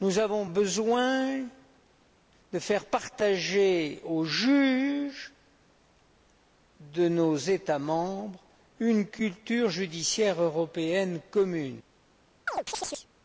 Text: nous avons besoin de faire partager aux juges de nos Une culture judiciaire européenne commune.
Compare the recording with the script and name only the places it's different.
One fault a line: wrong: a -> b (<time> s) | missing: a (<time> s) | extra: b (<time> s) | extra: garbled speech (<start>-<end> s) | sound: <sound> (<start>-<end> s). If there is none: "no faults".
extra: États membres (7.4 s)
sound: chirp (12.5-13.1 s)